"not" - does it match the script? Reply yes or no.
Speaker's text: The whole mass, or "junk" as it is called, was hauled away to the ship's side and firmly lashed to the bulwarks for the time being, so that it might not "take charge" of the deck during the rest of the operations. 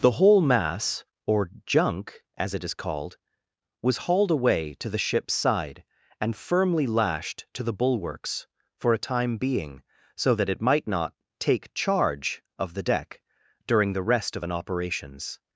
yes